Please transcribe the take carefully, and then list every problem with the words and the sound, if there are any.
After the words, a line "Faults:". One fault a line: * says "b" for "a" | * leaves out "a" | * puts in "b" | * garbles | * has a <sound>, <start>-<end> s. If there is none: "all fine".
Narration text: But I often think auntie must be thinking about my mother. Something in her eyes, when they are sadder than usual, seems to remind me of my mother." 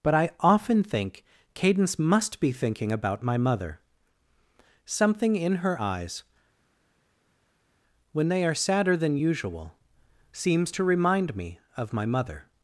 But I often think cadence must be thinking about my mother. Something in her eyes, when they are sadder than usual, seems to remind me of my mother."
Faults:
* says "cadence" for "auntie"